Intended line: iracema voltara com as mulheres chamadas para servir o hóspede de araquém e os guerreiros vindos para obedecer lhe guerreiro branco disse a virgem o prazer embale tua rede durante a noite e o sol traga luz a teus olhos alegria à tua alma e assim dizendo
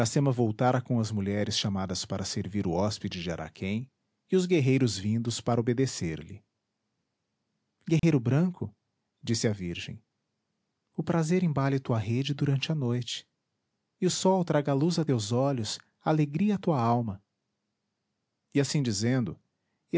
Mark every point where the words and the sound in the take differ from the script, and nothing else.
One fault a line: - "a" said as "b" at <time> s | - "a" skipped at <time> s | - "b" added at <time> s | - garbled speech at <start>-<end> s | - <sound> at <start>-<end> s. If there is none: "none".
- dropout at 8.0-8.0 s